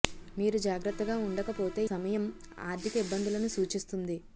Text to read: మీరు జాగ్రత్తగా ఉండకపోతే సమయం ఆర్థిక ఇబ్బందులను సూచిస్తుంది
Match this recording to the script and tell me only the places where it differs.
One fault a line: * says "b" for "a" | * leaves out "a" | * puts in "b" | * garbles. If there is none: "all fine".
all fine